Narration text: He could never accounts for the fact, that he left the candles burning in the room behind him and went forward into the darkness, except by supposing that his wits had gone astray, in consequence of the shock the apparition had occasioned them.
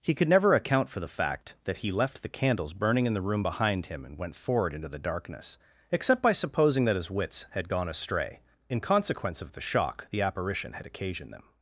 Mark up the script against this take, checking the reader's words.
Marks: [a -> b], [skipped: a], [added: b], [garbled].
He could never [accounts -> account] for the fact, that he left the candles burning in the room behind him and went forward into the darkness, except by supposing that his wits had gone astray, in consequence of the shock the apparition had occasioned them.